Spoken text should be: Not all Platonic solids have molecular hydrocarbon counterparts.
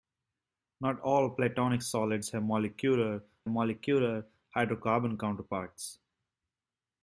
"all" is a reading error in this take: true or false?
false